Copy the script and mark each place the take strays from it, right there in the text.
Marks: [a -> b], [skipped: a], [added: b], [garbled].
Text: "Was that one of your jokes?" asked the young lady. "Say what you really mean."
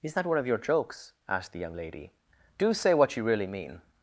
["Was -> Is] that one of your jokes?" asked the young lady. [added: Do] "Say what you really mean."